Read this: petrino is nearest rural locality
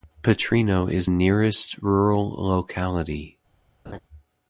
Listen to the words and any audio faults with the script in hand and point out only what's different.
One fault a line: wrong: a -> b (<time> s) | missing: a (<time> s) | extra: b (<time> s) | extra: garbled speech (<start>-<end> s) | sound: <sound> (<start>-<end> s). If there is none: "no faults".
sound: laugh (3.8-4.0 s)